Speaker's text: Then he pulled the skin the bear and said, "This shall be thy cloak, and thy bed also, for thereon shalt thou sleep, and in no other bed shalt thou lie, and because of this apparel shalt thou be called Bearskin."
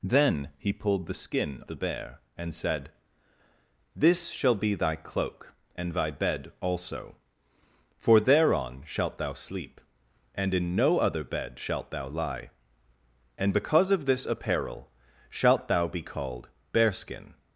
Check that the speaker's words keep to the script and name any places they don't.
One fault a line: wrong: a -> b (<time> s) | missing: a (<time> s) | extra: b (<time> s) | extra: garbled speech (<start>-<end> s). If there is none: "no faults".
no faults